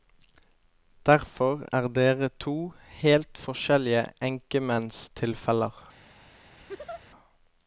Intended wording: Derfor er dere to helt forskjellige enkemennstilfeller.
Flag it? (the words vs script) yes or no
no